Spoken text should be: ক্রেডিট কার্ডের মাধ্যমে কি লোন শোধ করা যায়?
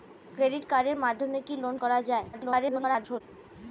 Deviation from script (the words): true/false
true